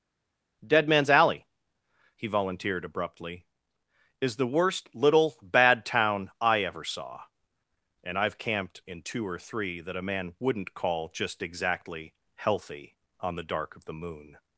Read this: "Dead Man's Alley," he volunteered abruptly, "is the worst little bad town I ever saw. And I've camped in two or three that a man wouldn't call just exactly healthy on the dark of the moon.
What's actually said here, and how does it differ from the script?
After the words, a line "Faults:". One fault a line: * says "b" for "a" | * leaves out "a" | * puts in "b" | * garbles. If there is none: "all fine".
"Dead Man's Alley," he volunteered abruptly, "is the worst little bad town I ever saw. And I've camped in two or three that a man wouldn't call just exactly healthy on the dark of the moon.
Faults:
all fine